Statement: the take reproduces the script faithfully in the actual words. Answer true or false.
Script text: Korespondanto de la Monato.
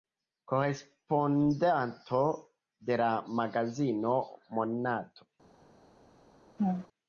false